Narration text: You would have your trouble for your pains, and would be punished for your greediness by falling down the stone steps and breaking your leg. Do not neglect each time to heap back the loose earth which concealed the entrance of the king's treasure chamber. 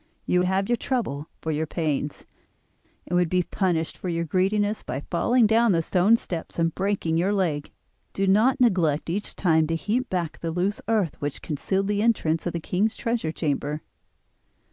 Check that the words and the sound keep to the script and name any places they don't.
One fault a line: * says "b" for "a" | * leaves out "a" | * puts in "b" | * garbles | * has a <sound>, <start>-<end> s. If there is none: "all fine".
* leaves out "would"